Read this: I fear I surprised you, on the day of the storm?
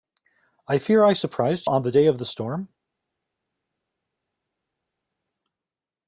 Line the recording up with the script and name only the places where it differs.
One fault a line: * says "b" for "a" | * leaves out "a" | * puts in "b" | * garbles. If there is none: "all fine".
* leaves out "you"